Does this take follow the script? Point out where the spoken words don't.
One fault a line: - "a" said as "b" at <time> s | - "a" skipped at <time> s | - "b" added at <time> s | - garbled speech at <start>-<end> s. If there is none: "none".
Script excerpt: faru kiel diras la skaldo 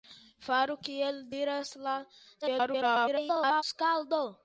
- garbled speech at 2.4-3.6 s